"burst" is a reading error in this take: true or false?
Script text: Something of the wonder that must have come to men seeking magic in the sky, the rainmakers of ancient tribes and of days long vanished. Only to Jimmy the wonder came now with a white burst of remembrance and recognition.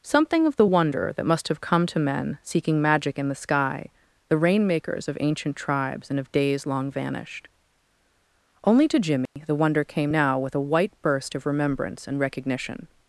false